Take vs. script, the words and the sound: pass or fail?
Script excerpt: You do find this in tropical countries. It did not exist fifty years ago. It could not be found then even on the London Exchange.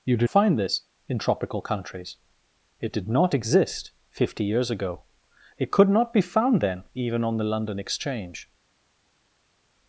pass